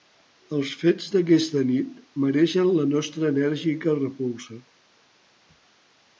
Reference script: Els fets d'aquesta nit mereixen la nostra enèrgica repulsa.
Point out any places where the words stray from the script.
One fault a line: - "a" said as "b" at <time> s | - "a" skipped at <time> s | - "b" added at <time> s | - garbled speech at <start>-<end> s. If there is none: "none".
none